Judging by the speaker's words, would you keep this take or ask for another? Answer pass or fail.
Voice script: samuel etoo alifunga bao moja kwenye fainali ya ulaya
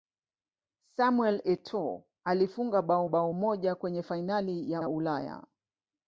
fail